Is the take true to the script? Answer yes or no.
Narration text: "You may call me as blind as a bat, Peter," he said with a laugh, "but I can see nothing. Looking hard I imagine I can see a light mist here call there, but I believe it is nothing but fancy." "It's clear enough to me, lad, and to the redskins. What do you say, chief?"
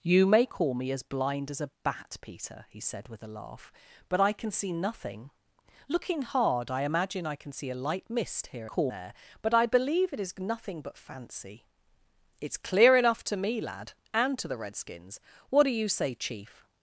yes